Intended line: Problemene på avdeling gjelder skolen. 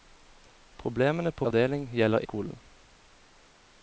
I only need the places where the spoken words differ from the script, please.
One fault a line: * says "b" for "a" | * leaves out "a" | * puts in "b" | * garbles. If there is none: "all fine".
all fine